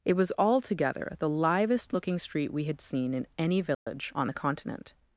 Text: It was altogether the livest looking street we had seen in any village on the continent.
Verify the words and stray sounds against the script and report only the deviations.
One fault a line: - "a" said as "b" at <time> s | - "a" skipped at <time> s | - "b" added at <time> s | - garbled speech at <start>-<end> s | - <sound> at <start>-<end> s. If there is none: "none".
- dropout at 3.7-3.9 s